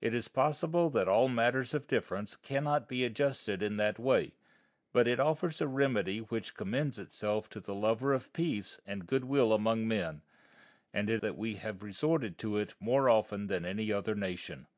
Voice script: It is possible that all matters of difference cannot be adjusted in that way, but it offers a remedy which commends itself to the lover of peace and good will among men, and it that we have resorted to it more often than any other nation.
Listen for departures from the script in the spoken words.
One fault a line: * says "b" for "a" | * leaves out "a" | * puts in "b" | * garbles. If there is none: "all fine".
all fine